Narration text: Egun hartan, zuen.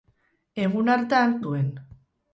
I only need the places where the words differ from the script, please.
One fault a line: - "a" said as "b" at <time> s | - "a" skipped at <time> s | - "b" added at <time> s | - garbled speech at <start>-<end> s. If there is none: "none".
none